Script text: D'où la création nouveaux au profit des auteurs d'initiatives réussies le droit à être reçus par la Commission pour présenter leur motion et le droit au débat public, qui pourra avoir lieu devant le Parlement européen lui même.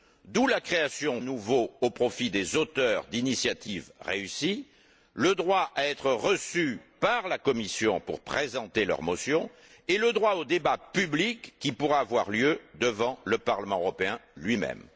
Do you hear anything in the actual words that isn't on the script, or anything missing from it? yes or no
no